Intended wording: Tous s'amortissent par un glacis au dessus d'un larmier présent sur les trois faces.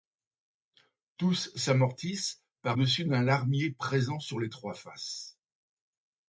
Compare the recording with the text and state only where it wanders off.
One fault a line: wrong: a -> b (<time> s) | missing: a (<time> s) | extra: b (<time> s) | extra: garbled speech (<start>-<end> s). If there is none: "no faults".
missing: un glacis au (2.8 s)